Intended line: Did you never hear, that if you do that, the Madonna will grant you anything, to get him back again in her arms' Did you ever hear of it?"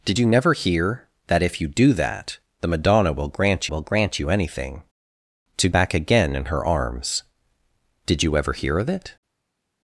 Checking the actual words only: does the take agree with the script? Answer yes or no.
no